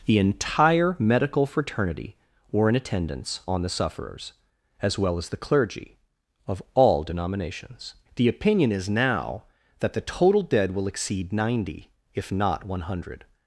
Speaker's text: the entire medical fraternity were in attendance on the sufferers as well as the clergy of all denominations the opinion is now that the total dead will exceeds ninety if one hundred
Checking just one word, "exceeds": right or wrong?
wrong